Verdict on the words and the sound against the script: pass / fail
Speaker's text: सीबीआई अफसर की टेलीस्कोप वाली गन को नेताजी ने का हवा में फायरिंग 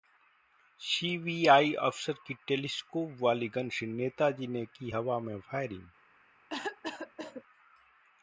fail